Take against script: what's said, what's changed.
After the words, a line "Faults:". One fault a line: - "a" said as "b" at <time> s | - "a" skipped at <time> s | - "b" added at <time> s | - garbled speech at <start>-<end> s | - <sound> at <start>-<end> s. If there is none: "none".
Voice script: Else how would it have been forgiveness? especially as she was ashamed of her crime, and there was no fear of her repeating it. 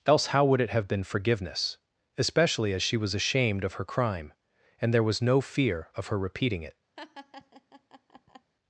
Else how would it have been forgiveness? especially as she was ashamed of her crime, and there was no fear of her repeating it.
Faults:
- laugh at 7.0-8.5 s